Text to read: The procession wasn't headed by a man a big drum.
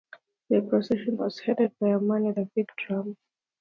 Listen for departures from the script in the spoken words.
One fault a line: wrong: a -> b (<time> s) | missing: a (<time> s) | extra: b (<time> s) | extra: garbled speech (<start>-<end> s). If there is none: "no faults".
wrong: wasn't -> was (1.2 s)
extra: with (2.2 s)